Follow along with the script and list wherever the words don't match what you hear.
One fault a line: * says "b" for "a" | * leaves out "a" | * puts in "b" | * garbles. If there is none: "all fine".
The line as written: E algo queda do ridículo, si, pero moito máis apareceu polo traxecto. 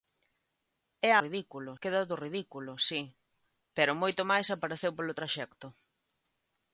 * says "ridículo" for "algo"